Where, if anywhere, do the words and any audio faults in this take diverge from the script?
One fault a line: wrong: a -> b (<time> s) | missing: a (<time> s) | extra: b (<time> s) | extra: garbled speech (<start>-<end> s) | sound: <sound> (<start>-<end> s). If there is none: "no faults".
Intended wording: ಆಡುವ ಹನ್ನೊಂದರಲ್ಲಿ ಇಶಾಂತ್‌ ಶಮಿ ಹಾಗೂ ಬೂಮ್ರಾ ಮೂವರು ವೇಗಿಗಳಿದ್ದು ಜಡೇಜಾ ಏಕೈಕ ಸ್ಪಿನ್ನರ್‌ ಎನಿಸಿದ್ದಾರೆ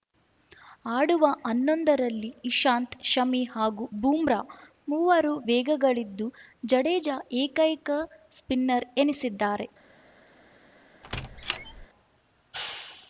sound: squeak (11.0-11.9 s)